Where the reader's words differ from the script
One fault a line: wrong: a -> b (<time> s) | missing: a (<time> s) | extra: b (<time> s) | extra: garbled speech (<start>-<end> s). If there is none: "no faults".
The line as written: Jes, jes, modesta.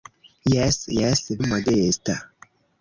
no faults